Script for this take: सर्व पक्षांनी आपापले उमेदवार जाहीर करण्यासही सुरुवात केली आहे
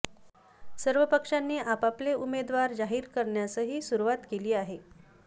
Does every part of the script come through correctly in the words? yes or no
yes